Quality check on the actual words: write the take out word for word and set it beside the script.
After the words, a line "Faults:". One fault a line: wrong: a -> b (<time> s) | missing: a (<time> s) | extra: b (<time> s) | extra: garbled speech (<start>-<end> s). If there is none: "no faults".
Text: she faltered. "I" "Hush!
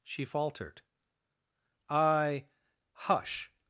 she faltered. "I" "Hush!
Faults:
no faults